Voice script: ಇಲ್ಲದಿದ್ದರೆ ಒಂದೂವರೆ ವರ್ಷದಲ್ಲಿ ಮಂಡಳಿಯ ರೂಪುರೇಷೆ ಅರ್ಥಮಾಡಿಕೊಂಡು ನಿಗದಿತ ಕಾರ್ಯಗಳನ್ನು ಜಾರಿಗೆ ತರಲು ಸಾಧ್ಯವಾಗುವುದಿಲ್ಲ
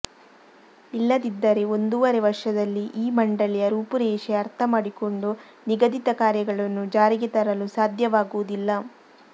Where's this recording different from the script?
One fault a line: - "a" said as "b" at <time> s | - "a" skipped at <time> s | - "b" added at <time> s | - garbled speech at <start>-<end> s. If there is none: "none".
- "ಈ" added at 3.0 s